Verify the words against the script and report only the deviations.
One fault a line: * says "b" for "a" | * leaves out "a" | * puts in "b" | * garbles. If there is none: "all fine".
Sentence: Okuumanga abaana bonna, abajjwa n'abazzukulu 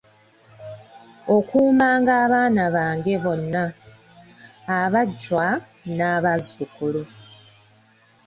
* puts in "bange"